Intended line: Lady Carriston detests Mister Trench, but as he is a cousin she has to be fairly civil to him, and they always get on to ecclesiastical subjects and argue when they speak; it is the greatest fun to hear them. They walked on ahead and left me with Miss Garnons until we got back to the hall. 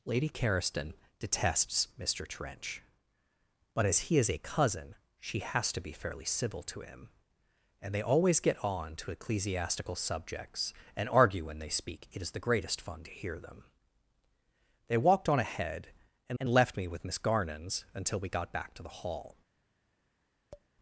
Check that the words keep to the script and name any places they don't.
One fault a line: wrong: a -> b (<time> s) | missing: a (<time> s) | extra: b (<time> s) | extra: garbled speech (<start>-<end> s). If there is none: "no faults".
extra: and (16.4 s)